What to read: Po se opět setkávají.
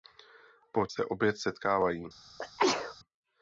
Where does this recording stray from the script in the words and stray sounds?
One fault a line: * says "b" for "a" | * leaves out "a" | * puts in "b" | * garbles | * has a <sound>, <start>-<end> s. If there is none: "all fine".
* has a sneeze, 2.4-2.9 s